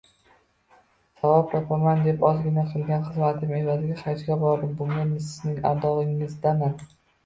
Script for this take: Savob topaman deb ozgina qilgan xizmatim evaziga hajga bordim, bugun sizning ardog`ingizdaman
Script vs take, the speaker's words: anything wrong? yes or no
no